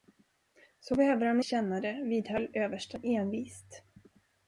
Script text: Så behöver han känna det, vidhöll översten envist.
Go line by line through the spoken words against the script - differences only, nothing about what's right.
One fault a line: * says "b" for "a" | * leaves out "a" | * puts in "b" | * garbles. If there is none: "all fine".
all fine